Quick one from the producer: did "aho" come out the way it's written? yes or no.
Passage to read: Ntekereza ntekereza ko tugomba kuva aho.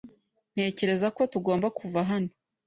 no